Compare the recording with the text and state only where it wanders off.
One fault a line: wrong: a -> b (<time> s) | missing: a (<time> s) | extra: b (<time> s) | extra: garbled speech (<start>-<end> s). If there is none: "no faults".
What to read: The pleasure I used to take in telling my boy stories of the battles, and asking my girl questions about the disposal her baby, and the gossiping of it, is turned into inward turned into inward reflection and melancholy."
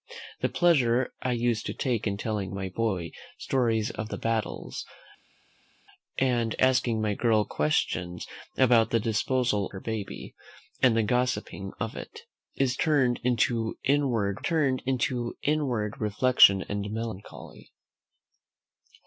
no faults